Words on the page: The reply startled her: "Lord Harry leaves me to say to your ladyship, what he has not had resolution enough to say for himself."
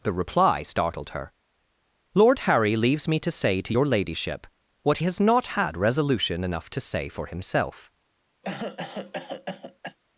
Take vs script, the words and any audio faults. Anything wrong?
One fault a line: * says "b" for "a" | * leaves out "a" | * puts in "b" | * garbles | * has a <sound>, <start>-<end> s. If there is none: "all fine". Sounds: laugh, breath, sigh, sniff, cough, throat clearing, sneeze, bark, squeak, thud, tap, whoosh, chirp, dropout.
* leaves out "he"
* has a cough, 8.4-10.0 s